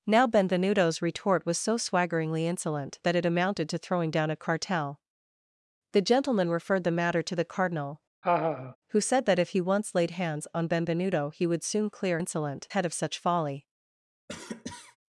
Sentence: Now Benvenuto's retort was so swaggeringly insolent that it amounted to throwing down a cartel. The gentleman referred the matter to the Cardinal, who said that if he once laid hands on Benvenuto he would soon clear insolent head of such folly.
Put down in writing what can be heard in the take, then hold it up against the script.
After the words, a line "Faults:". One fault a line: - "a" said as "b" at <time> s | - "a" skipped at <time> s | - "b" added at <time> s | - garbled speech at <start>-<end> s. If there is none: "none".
Now Benvenuto's retort was so swaggeringly insolent that it amounted to throwing down a cartel. The gentleman referred the matter to the Cardinal, who said that if he once laid hands on Benvenuto he would soon clear insolent head of such folly.
Faults:
none